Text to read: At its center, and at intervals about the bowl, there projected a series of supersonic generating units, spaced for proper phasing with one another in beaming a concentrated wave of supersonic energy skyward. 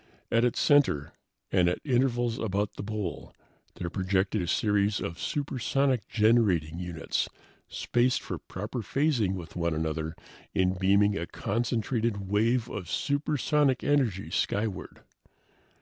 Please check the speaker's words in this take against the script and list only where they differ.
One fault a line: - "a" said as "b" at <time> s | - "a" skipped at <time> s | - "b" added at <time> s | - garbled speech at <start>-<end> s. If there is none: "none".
none